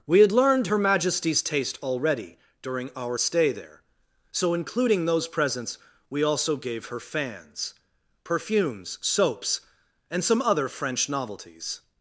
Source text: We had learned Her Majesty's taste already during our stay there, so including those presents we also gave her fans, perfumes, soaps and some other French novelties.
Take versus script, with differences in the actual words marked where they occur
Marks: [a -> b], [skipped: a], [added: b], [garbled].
We had learned Her Majesty's taste already during our stay there, so including those presents we also gave her fans, perfumes, soaps and some other French novelties.